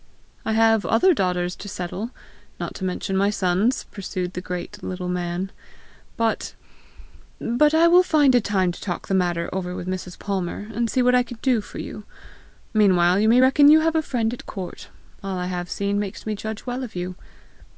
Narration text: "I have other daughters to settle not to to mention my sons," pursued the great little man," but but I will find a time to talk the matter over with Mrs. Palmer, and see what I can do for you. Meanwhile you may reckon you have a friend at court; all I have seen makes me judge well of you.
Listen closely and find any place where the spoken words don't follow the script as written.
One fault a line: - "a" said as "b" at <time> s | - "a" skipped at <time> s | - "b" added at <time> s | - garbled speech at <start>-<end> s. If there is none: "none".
- "to" skipped at 2.8 s